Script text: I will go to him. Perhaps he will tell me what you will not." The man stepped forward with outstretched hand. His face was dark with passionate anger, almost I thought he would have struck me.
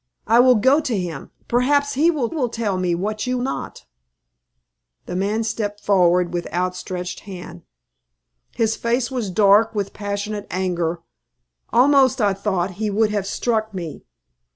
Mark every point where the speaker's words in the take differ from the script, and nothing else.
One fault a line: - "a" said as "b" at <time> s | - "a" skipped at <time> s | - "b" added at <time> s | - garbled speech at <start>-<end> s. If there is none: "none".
- "will" added at 2.3 s
- "will" skipped at 3.4 s